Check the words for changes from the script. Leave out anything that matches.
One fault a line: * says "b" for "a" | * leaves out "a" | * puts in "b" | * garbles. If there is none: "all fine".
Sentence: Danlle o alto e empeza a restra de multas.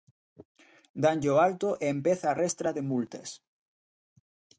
all fine